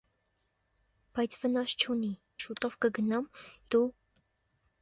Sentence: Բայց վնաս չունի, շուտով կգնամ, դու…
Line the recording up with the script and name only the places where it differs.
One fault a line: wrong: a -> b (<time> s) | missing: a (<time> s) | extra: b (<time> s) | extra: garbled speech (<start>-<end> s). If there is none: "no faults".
no faults